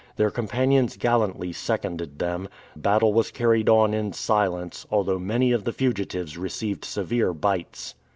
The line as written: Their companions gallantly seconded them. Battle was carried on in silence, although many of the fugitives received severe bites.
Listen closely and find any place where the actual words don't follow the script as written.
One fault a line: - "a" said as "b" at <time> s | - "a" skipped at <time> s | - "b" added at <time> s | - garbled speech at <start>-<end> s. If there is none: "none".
none